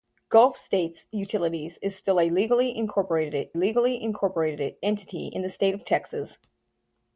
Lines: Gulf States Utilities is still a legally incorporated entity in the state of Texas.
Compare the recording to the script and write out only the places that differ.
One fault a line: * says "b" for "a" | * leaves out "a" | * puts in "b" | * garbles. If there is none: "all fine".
* puts in "legally incorporated"